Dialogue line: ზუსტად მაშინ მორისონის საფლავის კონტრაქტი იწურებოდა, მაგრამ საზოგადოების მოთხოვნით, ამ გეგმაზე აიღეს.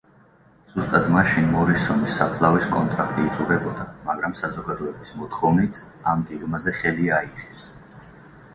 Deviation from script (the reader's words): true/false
true